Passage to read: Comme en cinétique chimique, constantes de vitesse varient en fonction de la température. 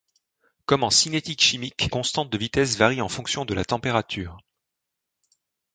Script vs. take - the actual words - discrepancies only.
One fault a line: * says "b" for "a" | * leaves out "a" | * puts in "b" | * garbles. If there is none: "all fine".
all fine